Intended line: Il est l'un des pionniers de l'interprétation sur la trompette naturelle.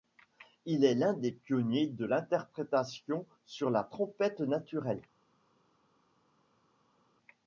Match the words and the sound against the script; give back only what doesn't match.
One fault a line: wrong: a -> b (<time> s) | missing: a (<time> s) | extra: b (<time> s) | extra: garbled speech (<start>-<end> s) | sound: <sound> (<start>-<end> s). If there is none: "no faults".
no faults